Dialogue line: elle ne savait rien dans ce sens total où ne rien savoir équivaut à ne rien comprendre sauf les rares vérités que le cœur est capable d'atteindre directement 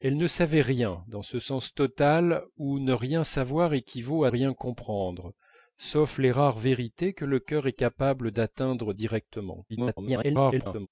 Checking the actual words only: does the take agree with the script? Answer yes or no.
no